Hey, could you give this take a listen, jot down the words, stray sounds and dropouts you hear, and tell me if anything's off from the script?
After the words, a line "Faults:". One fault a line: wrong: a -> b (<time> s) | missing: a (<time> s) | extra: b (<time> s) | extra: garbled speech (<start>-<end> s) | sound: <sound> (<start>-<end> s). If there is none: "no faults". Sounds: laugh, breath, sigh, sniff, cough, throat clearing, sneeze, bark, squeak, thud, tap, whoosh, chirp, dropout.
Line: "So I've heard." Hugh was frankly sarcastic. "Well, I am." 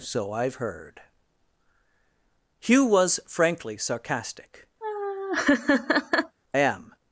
"So I've heard." Hugh was frankly sarcastic. "Am."
Faults:
missing: Well I (4.7 s)
sound: laugh (4.8-6.4 s)